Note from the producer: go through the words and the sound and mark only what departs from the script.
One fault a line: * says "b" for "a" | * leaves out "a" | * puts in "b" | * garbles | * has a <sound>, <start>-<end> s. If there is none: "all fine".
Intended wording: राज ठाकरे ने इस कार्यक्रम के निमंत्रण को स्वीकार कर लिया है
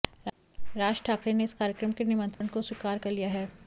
* has a dropout, 2.3-2.4 s